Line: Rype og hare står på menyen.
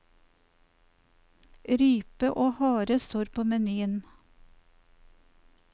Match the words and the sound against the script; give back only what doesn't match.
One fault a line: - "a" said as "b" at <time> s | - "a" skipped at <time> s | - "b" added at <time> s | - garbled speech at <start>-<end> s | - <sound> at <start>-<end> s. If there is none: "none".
none